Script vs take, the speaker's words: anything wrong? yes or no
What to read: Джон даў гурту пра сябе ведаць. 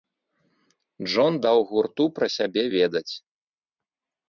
no